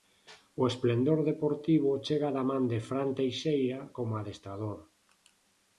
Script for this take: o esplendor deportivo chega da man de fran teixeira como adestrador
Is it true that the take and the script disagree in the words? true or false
false